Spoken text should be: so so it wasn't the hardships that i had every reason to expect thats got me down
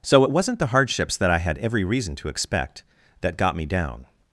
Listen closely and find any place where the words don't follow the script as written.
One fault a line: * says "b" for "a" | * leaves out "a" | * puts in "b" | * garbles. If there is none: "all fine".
* leaves out "so"
* says "that" for "thats"